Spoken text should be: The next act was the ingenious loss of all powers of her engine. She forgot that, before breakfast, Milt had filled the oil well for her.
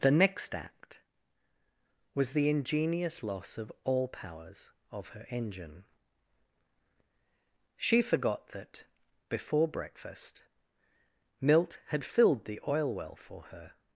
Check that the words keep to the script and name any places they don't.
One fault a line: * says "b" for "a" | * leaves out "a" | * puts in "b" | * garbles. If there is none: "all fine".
all fine